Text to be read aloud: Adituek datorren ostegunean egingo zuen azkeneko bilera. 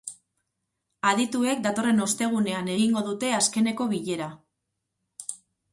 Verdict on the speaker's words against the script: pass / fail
fail